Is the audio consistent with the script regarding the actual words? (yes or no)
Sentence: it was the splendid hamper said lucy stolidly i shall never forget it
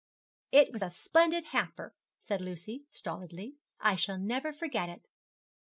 no